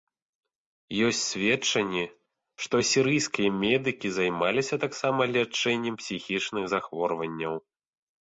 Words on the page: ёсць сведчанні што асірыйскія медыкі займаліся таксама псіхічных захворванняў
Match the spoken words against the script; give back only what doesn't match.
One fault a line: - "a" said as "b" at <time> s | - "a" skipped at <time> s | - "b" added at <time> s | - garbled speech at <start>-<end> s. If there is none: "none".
- "лячэннем" added at 5.3 s